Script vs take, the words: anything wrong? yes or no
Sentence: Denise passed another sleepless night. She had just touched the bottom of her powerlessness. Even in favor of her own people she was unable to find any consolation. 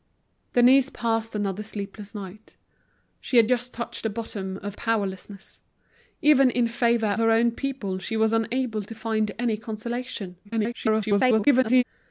yes